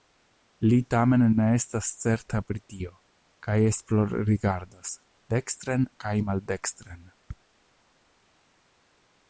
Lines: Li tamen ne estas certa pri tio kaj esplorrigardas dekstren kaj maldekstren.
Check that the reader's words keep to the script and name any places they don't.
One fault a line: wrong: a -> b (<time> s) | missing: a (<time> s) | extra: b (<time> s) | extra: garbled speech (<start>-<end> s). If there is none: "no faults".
no faults